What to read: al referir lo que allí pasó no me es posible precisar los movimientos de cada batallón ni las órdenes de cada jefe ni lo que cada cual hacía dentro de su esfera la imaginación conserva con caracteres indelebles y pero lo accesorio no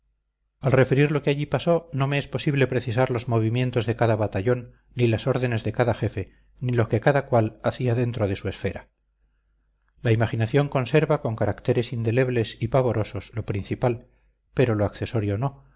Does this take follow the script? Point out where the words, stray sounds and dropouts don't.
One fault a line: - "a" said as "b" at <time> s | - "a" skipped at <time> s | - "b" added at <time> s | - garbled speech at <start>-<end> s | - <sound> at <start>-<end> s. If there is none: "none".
- "pavorosos lo principal" added at 12.7 s